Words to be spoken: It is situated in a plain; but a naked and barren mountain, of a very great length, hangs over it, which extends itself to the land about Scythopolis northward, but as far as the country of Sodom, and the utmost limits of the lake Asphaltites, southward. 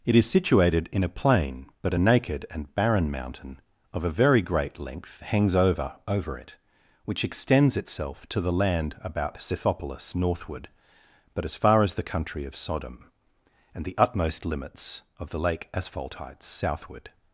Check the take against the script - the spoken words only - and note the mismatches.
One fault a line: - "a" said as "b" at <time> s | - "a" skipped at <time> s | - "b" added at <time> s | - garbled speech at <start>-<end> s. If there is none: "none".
- "over" added at 6.1 s